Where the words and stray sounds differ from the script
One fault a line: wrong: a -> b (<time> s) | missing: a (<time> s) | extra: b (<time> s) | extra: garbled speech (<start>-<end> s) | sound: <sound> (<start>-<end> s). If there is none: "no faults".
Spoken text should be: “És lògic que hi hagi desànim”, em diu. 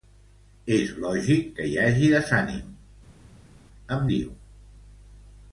no faults